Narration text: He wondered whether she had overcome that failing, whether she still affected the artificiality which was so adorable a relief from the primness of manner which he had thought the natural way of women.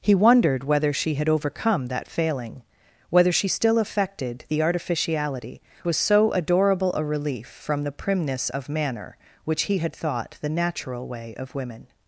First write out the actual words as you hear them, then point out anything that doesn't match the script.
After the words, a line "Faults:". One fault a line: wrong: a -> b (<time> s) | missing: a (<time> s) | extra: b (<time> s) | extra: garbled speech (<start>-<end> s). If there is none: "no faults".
He wondered whether she had overcome that failing, whether she still affected the artificiality was so adorable a relief from the primness of manner which he had thought the natural way of women.
Faults:
missing: which (5.6 s)